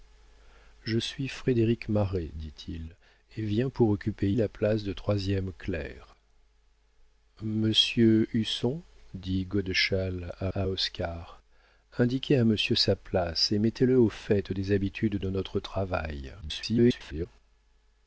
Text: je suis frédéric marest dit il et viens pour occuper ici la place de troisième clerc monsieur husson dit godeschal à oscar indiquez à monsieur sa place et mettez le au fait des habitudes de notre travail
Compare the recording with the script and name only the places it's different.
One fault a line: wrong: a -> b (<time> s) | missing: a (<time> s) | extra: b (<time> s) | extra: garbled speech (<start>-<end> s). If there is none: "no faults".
missing: ici (4.3 s)
extra: à (10.5 s)
extra: garbled speech (16.4-17.3 s)